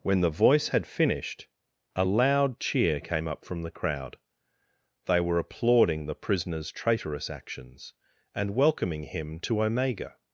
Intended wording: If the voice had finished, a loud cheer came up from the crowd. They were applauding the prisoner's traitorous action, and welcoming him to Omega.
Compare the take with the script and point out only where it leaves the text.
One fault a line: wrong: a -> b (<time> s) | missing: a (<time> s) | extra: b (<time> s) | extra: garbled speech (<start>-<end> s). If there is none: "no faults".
wrong: If -> When (0.0 s)
wrong: action -> actions (7.3 s)